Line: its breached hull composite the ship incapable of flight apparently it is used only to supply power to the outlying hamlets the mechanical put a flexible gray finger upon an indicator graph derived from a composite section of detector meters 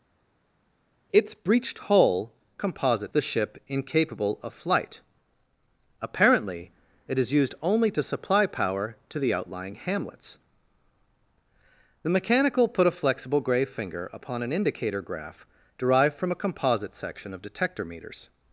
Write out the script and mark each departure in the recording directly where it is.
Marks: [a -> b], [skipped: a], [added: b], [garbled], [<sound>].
its breached hull composite the ship incapable of flight apparently it is used only to supply power to the outlying hamlets the mechanical put a flexible gray finger upon an indicator graph derived from a composite section of detector meters